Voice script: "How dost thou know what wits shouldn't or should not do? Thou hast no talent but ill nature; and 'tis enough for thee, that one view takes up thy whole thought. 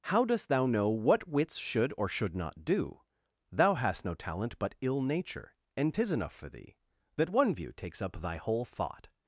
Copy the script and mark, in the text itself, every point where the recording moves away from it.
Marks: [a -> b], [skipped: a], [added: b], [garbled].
"How dost thou know what wits [shouldn't -> should] or should not do? Thou hast no talent but ill nature; and 'tis enough for thee, that one view takes up thy whole thought.